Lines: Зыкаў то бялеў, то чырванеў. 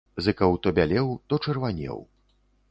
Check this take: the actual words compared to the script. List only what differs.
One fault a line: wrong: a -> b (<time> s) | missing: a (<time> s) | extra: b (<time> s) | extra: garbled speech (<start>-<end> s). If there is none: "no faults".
no faults